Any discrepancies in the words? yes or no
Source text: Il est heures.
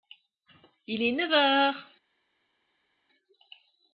yes